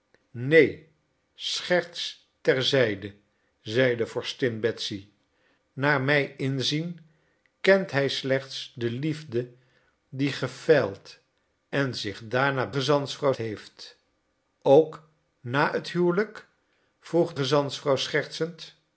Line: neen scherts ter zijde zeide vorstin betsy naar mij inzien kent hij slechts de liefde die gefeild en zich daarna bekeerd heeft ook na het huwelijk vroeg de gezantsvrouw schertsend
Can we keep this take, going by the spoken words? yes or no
no